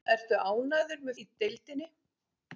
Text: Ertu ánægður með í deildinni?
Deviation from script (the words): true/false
false